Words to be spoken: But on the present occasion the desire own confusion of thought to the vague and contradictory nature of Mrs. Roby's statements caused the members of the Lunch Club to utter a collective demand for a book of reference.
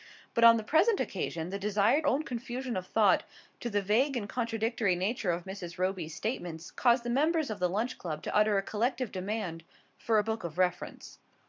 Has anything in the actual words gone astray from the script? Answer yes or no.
no